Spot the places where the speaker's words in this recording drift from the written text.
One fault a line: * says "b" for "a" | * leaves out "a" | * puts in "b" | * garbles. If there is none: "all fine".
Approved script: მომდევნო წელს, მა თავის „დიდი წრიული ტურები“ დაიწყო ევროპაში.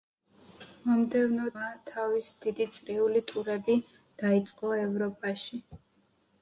* leaves out "წელს"